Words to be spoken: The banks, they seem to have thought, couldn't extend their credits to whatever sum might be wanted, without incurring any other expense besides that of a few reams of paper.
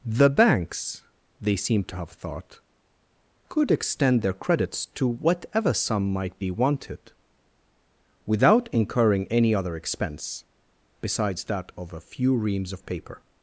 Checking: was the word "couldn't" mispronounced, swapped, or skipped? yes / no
yes